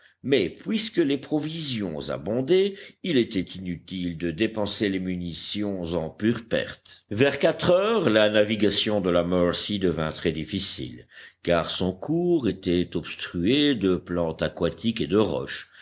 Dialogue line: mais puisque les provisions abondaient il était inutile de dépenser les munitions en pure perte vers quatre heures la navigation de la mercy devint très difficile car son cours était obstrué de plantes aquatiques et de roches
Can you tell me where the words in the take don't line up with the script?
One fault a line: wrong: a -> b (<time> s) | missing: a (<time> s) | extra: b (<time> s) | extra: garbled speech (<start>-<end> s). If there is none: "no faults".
no faults